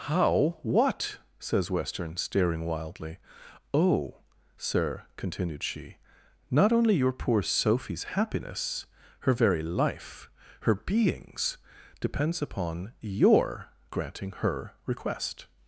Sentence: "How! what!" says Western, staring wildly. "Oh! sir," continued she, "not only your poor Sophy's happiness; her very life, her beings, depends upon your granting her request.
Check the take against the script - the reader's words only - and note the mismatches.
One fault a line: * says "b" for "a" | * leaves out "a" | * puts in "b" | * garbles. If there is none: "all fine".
all fine